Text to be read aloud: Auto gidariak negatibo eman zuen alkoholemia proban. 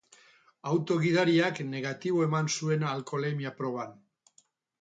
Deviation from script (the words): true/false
false